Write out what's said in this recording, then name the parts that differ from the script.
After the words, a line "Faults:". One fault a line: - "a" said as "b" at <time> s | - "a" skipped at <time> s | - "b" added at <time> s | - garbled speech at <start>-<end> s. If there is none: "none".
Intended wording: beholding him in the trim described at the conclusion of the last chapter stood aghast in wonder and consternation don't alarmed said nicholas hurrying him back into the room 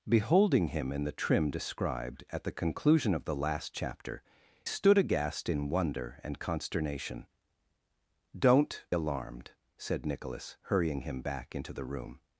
beholding him in the trim described at the conclusion of the last chapter stood aghast in wonder and consternation don't alarmed said nicholas hurrying him back into the room
Faults:
none